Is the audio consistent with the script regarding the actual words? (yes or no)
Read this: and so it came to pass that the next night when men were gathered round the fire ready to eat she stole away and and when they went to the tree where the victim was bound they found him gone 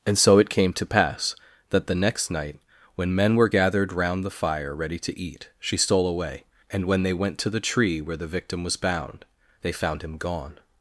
no